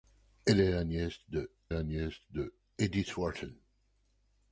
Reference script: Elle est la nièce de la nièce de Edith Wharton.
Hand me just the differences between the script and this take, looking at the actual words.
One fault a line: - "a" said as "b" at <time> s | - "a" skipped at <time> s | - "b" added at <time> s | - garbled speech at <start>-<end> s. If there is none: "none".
none